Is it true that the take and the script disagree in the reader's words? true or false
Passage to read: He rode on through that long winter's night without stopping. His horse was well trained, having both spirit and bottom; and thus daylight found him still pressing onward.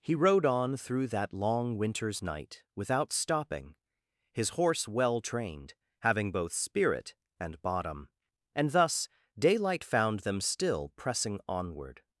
true